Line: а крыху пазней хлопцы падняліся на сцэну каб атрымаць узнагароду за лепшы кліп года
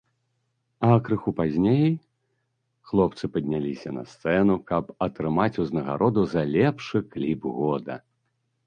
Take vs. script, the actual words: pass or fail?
pass